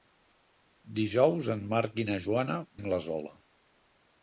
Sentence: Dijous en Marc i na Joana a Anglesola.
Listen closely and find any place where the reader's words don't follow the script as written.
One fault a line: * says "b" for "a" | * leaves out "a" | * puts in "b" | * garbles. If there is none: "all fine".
all fine